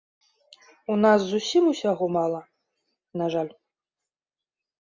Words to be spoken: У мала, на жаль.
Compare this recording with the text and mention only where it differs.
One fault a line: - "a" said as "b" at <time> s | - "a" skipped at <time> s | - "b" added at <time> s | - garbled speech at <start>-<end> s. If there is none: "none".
- "нас зусім усяго" added at 1.0 s